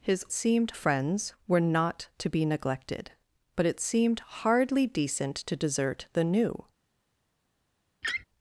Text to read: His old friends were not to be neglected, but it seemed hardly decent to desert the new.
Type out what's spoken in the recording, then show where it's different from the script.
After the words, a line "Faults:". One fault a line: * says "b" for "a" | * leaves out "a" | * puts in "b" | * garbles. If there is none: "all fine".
His seemed friends were not to be neglected, but it seemed hardly decent to desert the new.
Faults:
* says "seemed" for "old"